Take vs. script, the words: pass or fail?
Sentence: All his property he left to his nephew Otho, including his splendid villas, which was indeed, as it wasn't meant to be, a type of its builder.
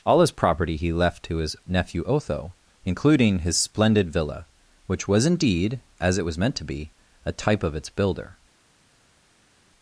fail